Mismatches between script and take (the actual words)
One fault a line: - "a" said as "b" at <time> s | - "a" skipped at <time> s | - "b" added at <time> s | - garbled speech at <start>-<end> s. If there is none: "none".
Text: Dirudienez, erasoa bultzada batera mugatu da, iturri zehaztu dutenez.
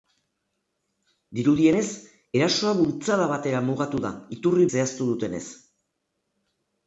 none